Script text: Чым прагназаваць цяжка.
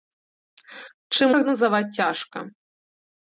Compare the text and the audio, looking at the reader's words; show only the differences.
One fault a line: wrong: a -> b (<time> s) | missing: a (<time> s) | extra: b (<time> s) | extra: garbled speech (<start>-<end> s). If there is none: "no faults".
no faults